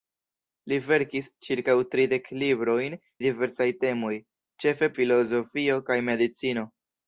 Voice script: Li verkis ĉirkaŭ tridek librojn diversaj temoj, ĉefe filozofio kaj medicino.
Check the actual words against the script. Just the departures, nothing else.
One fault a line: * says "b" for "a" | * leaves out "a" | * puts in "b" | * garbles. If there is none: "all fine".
all fine